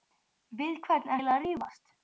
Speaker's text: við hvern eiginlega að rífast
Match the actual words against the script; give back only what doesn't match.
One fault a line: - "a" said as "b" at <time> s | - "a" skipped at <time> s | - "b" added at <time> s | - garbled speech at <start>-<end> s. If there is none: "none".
none